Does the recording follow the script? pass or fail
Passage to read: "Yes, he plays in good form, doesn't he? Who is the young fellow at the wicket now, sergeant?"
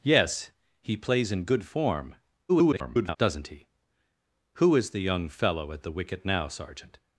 fail